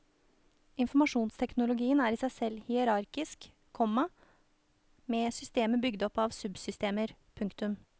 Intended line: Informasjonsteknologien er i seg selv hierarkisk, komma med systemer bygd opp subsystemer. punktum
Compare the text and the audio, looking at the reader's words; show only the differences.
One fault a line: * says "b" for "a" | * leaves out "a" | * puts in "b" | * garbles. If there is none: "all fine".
* puts in "av"